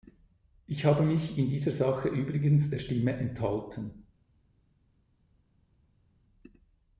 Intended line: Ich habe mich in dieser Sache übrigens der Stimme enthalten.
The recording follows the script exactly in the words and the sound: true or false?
true